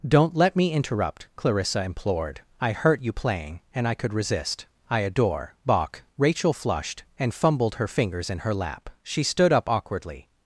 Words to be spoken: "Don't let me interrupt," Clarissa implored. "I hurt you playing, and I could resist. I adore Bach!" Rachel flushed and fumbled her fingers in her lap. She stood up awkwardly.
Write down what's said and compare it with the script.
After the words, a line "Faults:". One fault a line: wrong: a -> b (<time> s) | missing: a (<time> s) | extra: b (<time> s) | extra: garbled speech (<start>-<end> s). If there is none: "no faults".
"Don't let me interrupt," Clarissa implored. "I hurt you playing, and I could resist. I adore Bach!" Rachel flushed and fumbled her fingers in her lap. She stood up awkwardly.
Faults:
no faults